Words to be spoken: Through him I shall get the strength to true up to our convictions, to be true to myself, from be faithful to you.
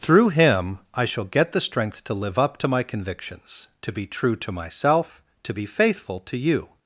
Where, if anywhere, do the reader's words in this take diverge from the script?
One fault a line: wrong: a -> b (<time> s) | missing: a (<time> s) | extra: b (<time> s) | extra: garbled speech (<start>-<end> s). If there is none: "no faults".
wrong: true -> live (2.1 s)
wrong: our -> my (2.7 s)
wrong: from -> to (5.4 s)